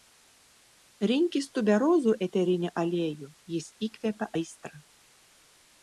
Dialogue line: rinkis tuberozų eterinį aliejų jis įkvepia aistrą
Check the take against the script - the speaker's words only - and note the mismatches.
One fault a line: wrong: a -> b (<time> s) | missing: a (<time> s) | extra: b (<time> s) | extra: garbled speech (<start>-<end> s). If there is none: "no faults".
no faults